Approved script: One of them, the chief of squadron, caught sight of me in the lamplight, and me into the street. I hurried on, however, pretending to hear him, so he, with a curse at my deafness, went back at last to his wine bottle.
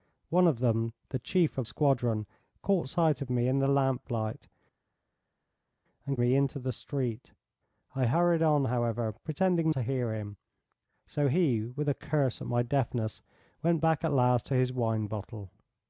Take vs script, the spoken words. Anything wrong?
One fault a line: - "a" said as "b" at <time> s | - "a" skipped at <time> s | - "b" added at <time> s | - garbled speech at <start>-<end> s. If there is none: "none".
none